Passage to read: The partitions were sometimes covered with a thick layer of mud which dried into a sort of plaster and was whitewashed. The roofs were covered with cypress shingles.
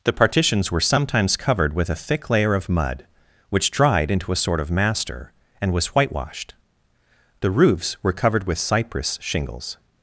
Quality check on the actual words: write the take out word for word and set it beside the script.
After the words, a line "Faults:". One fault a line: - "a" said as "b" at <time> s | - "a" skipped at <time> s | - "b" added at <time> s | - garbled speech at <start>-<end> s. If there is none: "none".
The partitions were sometimes covered with a thick layer of mud which dried into a sort of master and was whitewashed. The roofs were covered with cypress shingles.
Faults:
- "plaster" said as "master" at 4.7 s